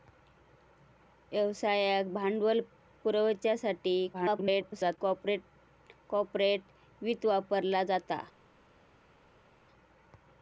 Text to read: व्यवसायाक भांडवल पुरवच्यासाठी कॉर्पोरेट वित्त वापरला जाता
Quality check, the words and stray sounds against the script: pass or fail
fail